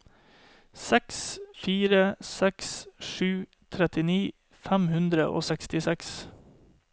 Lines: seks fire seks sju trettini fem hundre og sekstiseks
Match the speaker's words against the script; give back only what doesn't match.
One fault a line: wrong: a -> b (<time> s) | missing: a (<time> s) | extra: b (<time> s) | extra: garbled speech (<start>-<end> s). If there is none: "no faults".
no faults